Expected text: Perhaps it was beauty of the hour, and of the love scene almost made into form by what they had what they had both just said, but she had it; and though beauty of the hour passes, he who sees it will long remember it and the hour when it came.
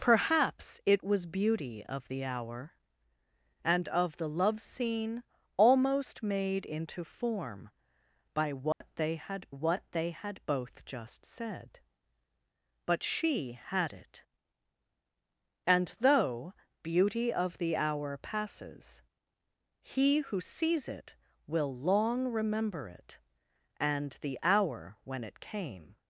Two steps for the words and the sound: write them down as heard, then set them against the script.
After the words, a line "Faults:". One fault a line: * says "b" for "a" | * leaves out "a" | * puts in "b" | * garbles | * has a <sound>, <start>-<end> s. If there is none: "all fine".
Perhaps it was beauty of the hour, and of the love scene almost made into form by what they had what they had both just said, but she had it; and though beauty of the hour passes, he who sees it will long remember it and the hour when it came.
Faults:
* has a dropout, 8.7-8.8 s